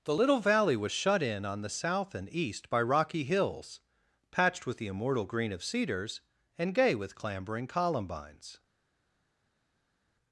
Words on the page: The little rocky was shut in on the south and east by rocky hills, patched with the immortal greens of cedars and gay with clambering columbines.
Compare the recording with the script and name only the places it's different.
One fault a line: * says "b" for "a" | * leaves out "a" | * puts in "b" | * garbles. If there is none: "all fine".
* says "valley" for "rocky"
* says "green" for "greens"